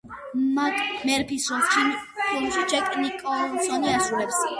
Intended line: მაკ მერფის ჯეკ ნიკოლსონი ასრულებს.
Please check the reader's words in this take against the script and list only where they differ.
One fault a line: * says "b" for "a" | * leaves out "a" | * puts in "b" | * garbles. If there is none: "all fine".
* puts in "როლს ფილმში"